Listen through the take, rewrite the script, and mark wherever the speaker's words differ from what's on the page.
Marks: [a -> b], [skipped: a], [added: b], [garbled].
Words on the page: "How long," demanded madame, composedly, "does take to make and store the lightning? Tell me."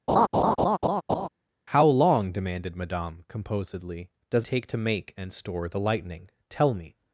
"How long," demanded madame, composedly, "does take to make and store the lightning? Tell me."